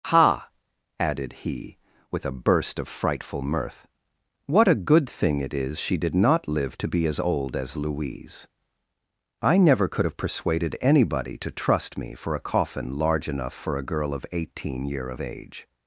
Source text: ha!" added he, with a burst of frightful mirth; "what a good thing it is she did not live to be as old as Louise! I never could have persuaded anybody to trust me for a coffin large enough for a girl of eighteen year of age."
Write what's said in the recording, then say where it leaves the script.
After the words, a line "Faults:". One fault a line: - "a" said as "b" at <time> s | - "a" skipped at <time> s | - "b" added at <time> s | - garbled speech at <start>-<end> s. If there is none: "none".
ha!" added he, with a burst of frightful mirth; "what a good thing it is she did not live to be as old as Louise! I never could have persuaded anybody to trust me for a coffin large enough for a girl of eighteen year of age."
Faults:
none